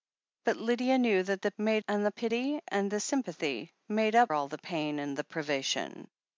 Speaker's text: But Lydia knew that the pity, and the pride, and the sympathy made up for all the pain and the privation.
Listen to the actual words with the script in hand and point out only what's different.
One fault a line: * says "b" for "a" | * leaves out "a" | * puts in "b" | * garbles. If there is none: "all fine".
* says "made" for "pity"
* says "pity" for "pride"
* leaves out "for"